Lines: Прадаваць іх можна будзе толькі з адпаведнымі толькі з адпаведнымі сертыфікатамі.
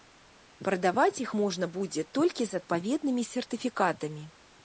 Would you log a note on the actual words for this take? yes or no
yes